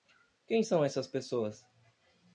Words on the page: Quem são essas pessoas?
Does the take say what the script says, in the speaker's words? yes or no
yes